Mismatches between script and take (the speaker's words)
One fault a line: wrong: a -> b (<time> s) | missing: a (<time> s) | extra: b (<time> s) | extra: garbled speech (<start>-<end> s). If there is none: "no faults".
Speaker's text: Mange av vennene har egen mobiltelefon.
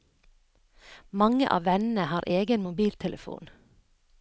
no faults